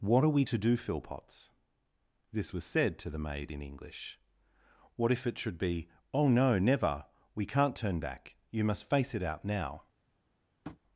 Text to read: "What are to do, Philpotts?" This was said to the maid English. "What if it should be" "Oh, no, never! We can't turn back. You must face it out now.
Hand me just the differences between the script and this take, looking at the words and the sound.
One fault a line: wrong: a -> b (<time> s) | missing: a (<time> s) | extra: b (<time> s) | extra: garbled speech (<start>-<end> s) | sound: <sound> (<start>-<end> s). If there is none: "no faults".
extra: we (0.3 s)
extra: in (3.5 s)
sound: tap (10.6-10.8 s)